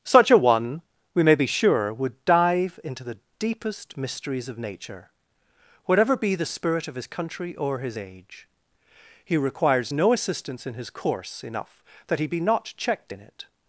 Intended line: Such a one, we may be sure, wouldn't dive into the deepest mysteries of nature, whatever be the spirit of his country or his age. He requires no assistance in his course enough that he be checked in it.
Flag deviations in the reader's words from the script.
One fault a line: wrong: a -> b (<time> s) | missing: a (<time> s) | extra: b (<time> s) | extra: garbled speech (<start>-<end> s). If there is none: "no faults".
wrong: wouldn't -> would (1.9 s)
extra: not (12.4 s)